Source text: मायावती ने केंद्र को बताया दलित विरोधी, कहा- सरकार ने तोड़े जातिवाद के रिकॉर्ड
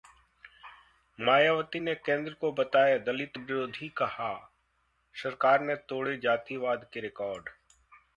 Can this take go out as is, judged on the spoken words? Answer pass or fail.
pass